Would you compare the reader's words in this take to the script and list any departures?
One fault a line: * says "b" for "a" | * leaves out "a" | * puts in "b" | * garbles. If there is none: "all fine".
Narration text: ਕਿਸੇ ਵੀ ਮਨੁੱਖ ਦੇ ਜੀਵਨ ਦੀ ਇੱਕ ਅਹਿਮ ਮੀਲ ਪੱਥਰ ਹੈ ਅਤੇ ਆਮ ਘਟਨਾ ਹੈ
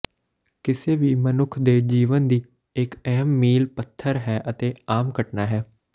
all fine